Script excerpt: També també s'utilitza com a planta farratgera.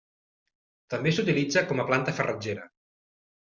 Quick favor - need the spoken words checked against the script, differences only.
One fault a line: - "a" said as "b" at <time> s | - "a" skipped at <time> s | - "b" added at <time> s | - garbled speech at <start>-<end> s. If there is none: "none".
- "també" skipped at 1.1 s